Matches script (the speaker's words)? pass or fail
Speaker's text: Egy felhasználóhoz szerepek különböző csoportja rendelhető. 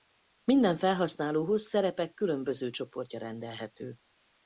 fail